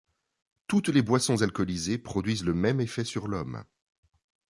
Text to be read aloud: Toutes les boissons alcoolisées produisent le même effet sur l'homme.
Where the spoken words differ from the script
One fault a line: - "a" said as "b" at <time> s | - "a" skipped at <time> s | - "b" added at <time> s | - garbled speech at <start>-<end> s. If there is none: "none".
none